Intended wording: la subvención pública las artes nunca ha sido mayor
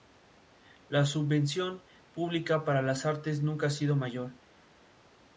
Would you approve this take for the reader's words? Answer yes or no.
no